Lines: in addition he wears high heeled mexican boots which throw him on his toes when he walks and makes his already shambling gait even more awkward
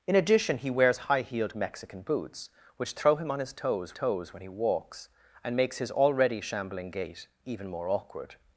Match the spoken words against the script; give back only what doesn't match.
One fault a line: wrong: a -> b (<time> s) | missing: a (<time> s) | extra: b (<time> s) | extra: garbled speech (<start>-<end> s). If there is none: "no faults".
extra: toes (3.9 s)